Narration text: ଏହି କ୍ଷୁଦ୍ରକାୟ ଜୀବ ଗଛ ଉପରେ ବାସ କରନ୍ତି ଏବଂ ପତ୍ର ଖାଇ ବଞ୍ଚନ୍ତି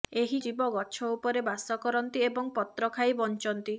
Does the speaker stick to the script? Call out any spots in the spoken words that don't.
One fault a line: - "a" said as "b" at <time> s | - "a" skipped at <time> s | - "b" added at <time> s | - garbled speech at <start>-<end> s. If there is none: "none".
- "କ୍ଷୁଦ୍ରକାୟ" skipped at 0.4 s